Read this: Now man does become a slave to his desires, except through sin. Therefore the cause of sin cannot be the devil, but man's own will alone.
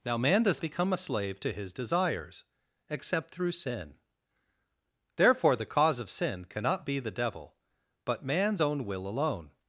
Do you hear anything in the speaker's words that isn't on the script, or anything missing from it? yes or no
no